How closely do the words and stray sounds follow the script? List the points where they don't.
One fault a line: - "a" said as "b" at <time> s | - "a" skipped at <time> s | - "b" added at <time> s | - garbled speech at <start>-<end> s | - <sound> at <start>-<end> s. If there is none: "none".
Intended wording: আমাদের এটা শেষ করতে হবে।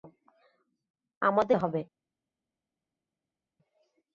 - "এটা শেষ করতে" skipped at 1.6 s